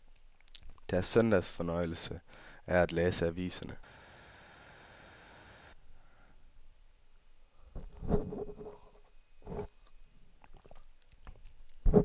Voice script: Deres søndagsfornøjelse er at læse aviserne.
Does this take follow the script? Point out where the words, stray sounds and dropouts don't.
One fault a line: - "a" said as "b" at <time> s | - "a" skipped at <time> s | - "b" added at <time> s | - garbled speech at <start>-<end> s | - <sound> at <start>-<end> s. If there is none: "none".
none